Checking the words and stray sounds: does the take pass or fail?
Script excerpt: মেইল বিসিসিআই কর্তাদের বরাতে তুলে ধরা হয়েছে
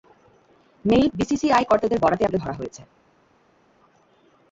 pass